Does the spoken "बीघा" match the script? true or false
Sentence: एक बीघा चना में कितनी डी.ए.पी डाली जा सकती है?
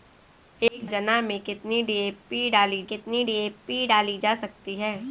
false